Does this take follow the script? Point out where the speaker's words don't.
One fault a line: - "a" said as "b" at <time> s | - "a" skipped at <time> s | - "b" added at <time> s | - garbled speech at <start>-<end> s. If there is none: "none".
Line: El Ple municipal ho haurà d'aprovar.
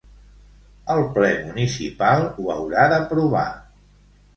none